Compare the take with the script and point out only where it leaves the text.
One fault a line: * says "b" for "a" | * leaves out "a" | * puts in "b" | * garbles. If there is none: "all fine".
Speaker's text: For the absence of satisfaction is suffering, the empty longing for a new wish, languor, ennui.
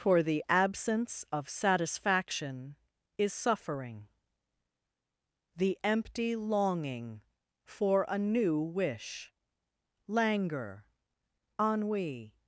all fine